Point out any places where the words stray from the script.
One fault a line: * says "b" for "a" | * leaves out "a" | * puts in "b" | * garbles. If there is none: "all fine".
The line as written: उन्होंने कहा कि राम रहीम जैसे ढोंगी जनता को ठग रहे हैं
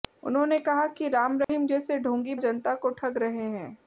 all fine